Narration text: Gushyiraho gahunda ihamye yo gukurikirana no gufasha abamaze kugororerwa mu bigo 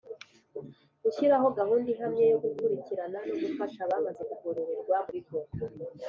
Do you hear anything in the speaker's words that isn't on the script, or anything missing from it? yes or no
no